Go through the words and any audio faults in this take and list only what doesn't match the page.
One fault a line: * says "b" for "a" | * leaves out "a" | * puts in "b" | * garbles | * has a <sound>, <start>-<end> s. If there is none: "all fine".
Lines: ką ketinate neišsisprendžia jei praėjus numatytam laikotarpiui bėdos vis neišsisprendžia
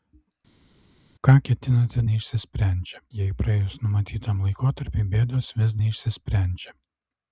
all fine